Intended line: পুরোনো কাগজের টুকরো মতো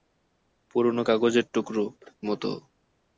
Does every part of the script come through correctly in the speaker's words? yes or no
yes